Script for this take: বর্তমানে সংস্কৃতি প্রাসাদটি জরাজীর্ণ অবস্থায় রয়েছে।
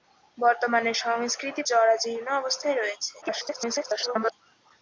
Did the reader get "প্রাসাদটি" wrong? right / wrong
wrong